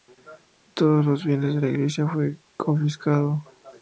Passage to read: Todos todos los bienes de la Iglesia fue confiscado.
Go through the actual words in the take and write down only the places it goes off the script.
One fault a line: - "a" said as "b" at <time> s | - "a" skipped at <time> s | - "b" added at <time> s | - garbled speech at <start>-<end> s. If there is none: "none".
- "todos" skipped at 1.1 s